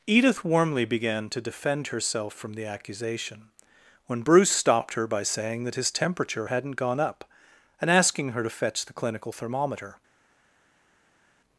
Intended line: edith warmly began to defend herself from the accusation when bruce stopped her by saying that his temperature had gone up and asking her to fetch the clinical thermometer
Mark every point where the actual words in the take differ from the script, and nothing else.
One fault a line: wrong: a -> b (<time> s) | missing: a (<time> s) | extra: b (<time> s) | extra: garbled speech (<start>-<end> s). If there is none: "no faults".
wrong: had -> hadn't (6.4 s)